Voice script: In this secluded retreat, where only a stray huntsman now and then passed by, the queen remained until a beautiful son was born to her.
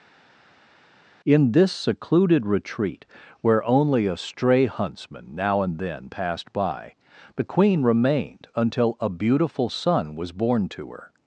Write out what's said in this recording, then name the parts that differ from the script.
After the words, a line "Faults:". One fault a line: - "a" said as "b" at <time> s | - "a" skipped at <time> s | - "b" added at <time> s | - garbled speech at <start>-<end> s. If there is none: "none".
In this secluded retreat, where only a stray huntsman now and then passed by, the queen remained until a beautiful son was born to her.
Faults:
none